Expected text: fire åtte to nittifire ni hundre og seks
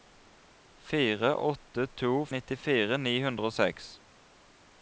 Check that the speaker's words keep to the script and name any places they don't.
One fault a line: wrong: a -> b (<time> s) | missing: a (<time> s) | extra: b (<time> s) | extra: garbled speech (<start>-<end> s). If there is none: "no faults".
no faults